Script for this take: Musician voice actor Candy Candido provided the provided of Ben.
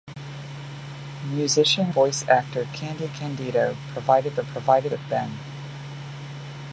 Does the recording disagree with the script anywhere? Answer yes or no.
no